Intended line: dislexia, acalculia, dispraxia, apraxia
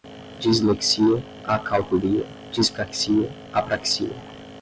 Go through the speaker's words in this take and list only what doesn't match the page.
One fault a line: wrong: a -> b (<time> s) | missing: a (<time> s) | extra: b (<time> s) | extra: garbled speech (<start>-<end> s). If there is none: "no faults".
no faults